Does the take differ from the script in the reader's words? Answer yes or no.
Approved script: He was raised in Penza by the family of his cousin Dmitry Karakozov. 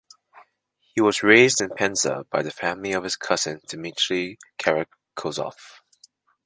no